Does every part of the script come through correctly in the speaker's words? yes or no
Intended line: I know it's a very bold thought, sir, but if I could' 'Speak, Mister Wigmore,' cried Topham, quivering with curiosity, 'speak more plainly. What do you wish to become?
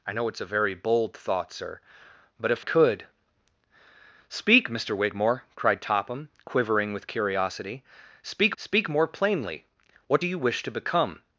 no